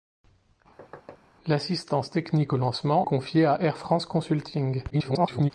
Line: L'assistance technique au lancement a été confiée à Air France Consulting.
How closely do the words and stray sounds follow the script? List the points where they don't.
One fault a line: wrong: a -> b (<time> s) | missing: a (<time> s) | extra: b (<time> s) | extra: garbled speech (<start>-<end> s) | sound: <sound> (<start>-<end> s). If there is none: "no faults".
sound: thud (0.8-1.2 s)
missing: a été (3.1 s)
extra: garbled speech (4.9-5.5 s)